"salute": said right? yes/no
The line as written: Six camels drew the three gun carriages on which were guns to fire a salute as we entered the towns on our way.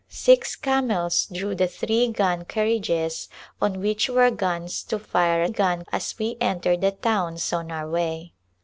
no